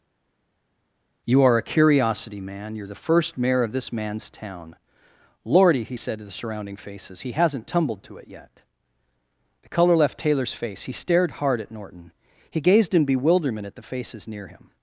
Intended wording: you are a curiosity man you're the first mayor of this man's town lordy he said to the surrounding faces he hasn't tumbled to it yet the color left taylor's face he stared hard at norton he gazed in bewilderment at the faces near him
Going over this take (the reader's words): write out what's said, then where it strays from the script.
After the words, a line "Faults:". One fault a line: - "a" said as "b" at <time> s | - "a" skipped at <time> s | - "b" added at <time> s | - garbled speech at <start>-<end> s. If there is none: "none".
you are a curiosity man you're the first mayor of this man's town lordy he said to the surrounding faces he hasn't tumbled to it yet the color left taylor's face he stared hard at norton he gazed in bewilderment at the faces near him
Faults:
none